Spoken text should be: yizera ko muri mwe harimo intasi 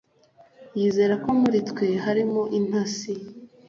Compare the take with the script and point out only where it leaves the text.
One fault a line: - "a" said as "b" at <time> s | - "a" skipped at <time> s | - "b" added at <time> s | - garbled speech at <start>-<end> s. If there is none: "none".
- "mwe" said as "twe" at 1.7 s